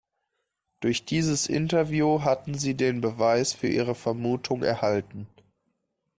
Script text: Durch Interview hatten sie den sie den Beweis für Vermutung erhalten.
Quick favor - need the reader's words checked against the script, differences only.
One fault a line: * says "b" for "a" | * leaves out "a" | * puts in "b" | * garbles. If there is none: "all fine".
* puts in "dieses"
* leaves out "sie den"
* puts in "ihre"